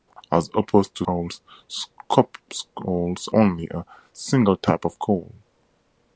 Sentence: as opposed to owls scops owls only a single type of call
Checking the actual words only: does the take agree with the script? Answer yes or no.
yes